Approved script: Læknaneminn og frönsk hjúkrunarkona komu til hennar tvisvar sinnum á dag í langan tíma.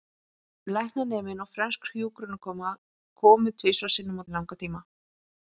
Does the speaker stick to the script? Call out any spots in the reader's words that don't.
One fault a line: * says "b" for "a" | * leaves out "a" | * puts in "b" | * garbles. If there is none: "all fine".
* leaves out "til hennar"
* leaves out "dag"